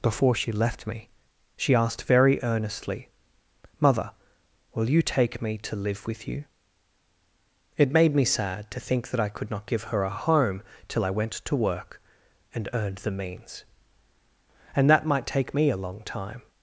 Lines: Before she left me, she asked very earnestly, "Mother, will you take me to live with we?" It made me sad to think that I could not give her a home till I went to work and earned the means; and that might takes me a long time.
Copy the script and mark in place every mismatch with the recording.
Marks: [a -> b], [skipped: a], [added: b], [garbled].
Before she left me, she asked very earnestly, "Mother, will you take me to live with [we?" -> you] It made me sad to think that I could not give her a home till I went to work and earned the means; and that might [takes -> take] me a long time.